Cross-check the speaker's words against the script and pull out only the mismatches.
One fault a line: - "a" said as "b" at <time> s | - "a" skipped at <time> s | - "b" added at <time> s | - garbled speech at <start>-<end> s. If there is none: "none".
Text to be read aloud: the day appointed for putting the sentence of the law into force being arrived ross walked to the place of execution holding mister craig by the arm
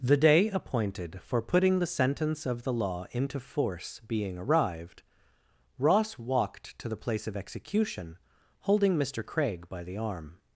none